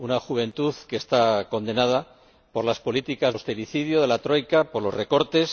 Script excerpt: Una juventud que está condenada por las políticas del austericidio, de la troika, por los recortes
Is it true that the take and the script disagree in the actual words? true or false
true